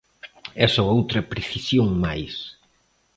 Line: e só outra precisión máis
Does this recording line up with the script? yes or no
yes